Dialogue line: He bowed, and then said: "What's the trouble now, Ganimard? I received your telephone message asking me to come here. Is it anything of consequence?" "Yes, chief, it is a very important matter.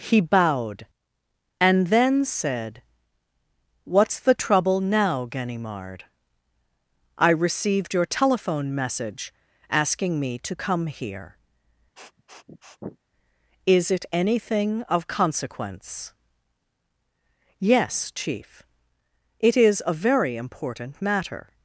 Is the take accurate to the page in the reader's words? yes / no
yes